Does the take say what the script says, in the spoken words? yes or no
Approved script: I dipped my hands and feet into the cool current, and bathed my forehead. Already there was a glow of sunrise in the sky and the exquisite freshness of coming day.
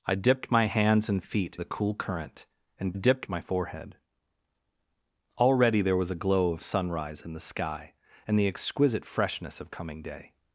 no